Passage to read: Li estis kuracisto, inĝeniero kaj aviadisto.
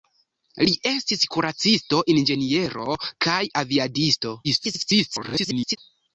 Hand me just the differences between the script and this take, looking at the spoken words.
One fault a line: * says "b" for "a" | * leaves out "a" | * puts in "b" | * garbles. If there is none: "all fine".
* garbles